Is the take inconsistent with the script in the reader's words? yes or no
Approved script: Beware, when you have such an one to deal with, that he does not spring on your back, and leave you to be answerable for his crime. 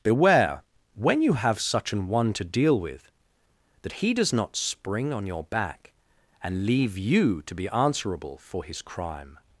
no